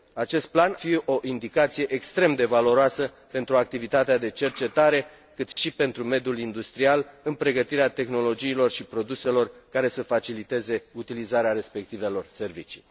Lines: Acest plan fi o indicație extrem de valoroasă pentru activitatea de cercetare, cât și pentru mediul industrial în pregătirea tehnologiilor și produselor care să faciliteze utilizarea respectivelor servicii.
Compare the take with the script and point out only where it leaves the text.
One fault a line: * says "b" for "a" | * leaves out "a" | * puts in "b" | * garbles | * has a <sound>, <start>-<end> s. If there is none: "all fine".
* has a dropout, 5.5-5.6 s